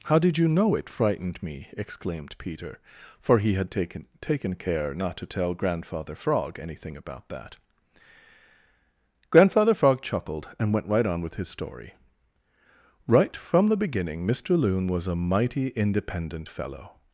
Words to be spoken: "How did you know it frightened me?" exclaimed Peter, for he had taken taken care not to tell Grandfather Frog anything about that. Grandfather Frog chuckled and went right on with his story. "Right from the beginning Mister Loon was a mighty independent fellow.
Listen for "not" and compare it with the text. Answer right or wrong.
right